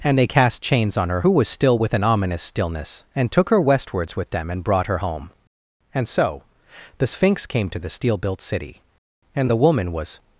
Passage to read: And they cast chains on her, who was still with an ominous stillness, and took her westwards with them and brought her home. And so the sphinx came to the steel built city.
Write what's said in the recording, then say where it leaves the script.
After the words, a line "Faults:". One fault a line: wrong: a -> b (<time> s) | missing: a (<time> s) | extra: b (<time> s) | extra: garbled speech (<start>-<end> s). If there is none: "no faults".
And they cast chains on her, who was still with an ominous stillness, and took her westwards with them and brought her home. And so the sphinx came to the steel built city. And the woman was
Faults:
extra: And the woman was (9.4 s)